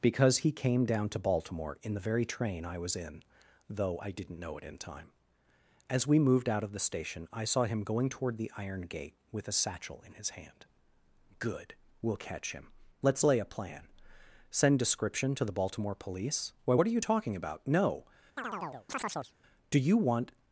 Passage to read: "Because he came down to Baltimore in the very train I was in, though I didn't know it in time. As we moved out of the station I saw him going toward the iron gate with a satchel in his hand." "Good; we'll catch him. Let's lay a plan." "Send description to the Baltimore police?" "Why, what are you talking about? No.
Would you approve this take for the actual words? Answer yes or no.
no